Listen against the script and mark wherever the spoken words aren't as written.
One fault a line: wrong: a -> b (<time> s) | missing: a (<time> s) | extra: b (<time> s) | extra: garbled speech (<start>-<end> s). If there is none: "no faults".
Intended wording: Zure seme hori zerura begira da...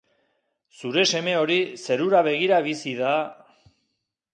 extra: bizi (2.7 s)